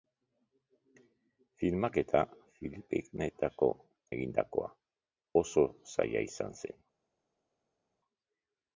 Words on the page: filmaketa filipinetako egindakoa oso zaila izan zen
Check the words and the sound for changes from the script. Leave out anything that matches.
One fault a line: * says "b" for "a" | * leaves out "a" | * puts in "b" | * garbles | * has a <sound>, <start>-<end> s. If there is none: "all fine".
all fine